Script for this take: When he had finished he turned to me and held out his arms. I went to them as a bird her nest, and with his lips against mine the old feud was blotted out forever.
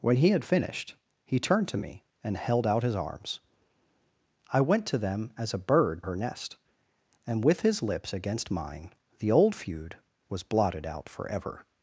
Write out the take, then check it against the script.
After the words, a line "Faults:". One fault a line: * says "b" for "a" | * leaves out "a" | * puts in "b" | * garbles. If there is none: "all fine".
When he had finished he turned to me and held out his arms. I went to them as a bird her nest, and with his lips against mine the old feud was blotted out forever.
Faults:
all fine